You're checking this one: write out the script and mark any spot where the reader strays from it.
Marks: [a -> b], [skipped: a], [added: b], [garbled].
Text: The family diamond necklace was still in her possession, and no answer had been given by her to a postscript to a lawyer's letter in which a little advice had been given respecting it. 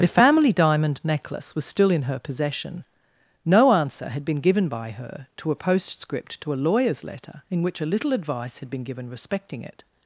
The family diamond necklace was still in her possession, [skipped: and] no answer had been given by her to a postscript to a lawyer's letter in which a little advice had been given respecting it.